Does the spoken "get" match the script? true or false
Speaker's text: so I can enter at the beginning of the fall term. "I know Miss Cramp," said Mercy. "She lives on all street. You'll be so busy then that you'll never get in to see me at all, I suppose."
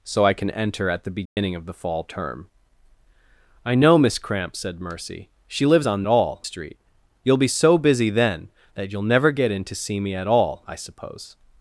true